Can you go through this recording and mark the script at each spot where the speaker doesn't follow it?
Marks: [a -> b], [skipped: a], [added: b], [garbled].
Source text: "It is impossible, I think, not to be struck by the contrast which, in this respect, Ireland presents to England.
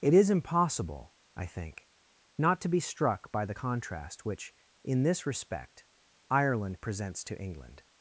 "It is impossible, I think, not to be struck by the contrast which, in this respect, Ireland presents to England.